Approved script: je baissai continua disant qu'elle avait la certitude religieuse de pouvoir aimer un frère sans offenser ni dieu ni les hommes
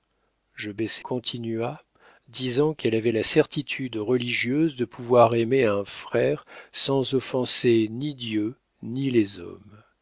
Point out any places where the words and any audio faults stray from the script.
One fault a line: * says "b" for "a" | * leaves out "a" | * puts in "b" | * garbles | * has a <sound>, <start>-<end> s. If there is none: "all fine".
all fine